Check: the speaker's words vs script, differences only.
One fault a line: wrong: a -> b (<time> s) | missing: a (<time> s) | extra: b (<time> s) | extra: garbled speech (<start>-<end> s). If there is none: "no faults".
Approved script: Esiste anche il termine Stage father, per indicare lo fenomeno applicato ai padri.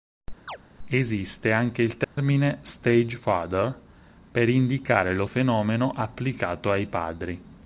no faults